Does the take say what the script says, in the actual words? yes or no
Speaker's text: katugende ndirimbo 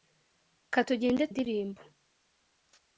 yes